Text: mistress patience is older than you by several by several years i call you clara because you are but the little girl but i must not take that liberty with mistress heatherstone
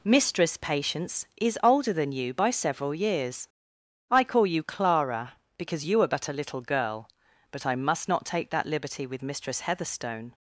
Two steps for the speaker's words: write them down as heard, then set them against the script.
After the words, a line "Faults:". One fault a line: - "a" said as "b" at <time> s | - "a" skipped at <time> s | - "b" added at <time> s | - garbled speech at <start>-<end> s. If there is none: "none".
mistress patience is older than you by several years i call you clara because you are but a little girl but i must not take that liberty with mistress heatherstone
Faults:
- "by several" skipped at 2.9 s
- "the" said as "a" at 6.3 s